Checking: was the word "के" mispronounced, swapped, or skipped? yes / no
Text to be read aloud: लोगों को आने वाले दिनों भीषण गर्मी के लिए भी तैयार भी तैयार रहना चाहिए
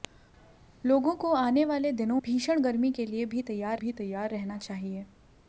no